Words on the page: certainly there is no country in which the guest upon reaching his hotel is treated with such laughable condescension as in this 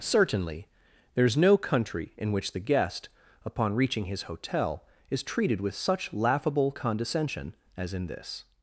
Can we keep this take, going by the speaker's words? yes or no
yes